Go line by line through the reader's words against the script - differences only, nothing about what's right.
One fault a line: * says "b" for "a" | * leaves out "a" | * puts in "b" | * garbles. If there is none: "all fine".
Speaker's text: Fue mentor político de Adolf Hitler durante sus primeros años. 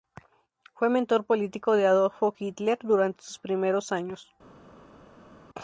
all fine